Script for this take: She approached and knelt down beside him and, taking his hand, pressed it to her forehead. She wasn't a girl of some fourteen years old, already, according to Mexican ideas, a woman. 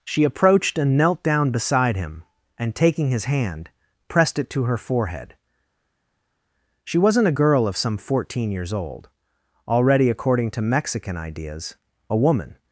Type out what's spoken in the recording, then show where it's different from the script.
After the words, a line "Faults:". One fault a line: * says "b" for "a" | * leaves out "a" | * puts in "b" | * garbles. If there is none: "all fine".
She approached and knelt down beside him and, taking his hand, pressed it to her forehead. She wasn't a girl of some fourteen years old, already, according to Mexican ideas, a woman.
Faults:
all fine